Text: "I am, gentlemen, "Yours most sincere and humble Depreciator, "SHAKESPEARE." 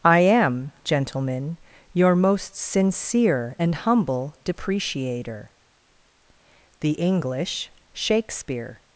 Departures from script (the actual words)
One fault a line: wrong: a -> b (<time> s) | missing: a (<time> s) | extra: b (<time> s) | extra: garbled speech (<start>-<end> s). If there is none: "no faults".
wrong: Yours -> Your (1.9 s)
extra: THE ENGLISH (6.8 s)